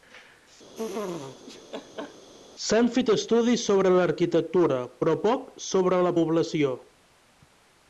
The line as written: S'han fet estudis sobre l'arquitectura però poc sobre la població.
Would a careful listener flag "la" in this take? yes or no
no